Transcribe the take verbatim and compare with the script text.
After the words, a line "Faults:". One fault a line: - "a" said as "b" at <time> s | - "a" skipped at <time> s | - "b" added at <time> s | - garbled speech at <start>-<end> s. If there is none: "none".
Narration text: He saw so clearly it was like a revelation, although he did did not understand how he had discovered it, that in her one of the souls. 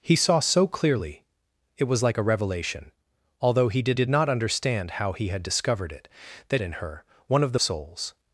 He saw so clearly it was like a revelation, although he did did not understand how he had discovered it, that in her one of the souls.
Faults:
none